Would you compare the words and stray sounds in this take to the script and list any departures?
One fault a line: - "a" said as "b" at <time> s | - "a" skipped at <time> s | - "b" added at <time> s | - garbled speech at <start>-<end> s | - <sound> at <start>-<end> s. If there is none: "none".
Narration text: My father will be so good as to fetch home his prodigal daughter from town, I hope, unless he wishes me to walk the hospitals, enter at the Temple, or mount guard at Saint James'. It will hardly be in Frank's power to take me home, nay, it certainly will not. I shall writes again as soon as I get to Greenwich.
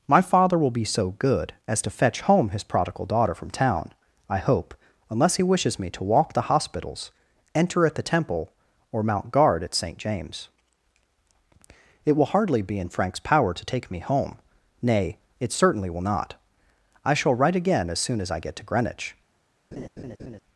- "writes" said as "write" at 17.4 s
- laugh at 19.7-20.4 s